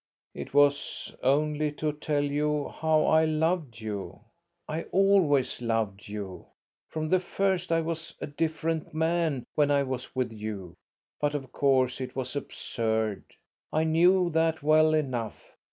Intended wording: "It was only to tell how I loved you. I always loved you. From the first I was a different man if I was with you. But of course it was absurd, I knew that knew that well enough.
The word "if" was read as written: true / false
false